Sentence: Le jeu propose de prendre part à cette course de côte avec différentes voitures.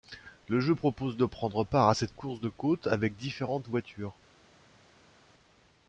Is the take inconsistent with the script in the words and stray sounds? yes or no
no